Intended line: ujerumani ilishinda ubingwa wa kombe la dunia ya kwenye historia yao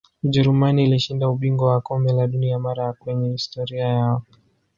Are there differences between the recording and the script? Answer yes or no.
yes